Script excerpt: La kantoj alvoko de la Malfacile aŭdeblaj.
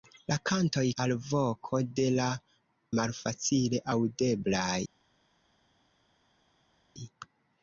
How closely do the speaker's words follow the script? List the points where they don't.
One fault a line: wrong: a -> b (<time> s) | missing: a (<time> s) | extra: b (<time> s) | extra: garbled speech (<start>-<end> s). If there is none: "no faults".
no faults